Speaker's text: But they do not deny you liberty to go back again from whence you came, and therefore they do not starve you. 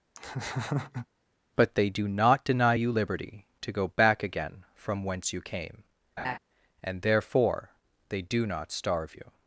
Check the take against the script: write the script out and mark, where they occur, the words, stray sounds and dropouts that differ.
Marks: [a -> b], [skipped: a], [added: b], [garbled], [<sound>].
[laugh] But they do not deny you liberty to go back again from whence you came, [laugh] and therefore they do not starve you.